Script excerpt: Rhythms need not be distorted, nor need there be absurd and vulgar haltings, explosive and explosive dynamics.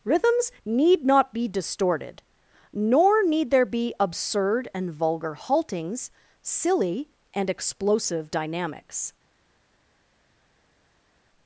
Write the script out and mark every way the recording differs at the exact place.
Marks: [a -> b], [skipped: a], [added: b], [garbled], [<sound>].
Rhythms need not be distorted, nor need there be absurd and vulgar haltings, [explosive -> silly] and explosive dynamics.